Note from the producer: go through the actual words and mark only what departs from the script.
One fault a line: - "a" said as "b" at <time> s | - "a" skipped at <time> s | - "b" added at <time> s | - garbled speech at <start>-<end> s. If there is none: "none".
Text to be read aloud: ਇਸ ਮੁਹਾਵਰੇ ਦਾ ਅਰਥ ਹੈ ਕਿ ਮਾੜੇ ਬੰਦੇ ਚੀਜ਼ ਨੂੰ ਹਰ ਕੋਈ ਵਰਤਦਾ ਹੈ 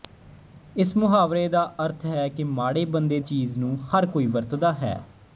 none